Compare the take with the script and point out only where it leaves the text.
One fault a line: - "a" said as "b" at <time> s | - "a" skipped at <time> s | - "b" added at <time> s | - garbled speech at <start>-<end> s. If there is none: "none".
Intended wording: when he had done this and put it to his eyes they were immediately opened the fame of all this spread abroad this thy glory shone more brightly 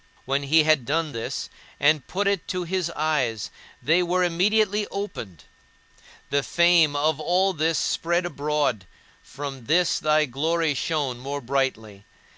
- "from" added at 9.2 s